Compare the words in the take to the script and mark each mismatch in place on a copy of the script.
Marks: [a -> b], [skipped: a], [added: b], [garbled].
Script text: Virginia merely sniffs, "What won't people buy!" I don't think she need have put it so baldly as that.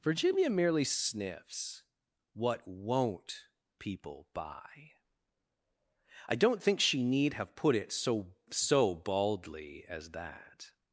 Virginia merely sniffs, "What won't people buy!" I don't think she need have put it so [added: so] baldly as that.